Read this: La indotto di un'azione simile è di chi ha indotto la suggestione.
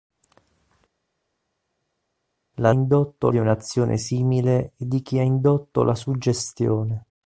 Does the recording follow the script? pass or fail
pass